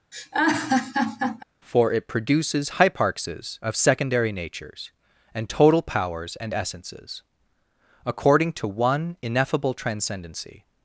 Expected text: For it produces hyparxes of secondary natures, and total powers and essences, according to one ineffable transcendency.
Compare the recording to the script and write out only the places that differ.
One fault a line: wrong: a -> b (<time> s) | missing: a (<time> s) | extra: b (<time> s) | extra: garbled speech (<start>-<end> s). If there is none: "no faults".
no faults